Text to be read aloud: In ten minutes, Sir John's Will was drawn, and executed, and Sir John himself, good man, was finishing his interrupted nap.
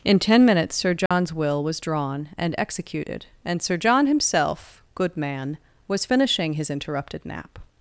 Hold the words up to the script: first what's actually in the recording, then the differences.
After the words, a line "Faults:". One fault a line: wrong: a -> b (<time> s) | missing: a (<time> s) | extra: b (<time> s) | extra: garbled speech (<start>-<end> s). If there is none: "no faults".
In ten minutes, Sir John's Will was drawn, and executed, and Sir John himself, good man, was finishing his interrupted nap.
Faults:
no faults